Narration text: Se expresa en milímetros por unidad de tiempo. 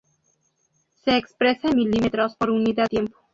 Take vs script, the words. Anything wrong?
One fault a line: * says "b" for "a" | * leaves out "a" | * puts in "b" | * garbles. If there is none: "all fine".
* leaves out "de"